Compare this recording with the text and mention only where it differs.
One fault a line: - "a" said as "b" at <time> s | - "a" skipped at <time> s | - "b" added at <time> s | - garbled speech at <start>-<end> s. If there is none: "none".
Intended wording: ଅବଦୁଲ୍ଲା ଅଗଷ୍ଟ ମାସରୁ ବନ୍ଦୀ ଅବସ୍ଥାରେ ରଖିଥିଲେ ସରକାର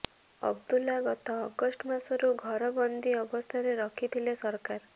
- "ଗତ" added at 1.0 s
- "ଘର" added at 2.4 s